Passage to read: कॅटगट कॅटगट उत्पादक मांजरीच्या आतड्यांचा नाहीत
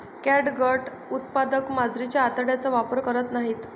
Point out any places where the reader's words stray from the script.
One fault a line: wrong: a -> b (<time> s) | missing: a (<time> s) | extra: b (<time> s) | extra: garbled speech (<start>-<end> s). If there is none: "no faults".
missing: कॅटगट (0.9 s)
extra: वापर करत (2.7 s)